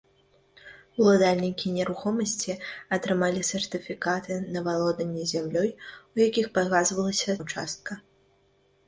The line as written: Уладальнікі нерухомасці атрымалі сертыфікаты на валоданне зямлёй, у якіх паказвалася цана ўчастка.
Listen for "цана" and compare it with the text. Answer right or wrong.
wrong